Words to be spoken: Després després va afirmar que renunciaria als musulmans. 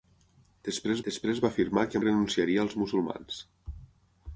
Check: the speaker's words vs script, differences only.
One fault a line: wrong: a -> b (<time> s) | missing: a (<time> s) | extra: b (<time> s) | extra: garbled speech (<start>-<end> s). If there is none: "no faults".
no faults